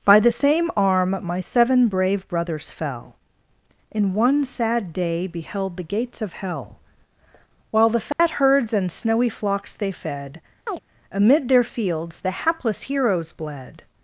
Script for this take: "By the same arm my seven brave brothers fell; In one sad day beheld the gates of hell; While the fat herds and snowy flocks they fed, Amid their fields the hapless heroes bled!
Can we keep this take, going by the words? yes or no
yes